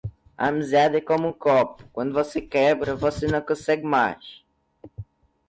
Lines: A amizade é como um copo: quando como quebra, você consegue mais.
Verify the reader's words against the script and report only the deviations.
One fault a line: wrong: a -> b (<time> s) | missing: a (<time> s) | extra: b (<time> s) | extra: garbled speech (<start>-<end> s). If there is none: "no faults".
wrong: como -> você (2.1 s)
extra: não (3.3 s)